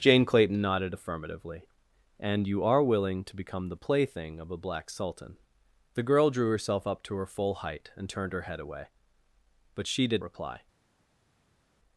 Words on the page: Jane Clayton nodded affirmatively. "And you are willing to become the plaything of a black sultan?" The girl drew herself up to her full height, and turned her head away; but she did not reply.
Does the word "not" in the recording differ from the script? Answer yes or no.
yes